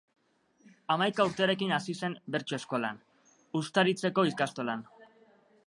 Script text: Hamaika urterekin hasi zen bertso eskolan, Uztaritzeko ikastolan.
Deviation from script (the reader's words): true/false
false